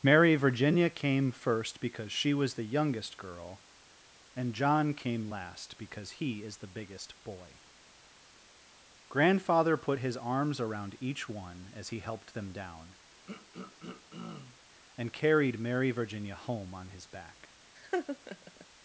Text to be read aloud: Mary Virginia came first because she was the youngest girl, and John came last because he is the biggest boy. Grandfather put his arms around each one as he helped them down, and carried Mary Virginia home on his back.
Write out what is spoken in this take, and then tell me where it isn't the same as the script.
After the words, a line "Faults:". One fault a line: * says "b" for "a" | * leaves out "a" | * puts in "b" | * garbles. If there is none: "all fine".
Mary Virginia came first because she was the youngest girl, and John came last because he is the biggest boy. Grandfather put his arms around each one as he helped them down, and carried Mary Virginia home on his back.
Faults:
all fine